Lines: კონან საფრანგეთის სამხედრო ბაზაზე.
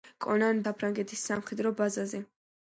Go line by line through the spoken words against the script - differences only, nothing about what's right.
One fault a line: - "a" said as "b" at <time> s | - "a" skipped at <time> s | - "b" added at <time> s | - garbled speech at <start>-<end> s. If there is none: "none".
none